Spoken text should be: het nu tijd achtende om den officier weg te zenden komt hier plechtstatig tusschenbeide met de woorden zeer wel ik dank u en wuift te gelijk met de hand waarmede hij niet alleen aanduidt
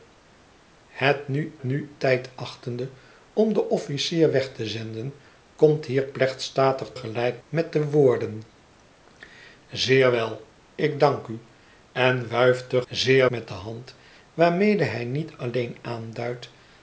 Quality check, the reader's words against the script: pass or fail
fail